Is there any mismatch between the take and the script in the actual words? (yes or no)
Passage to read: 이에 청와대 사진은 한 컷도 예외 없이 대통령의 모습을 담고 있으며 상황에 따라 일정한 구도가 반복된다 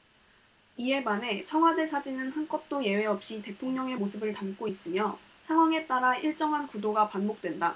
yes